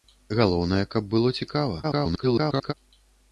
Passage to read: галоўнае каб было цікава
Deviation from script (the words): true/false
true